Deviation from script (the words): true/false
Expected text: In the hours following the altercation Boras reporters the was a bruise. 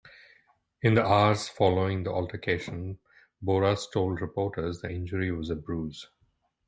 true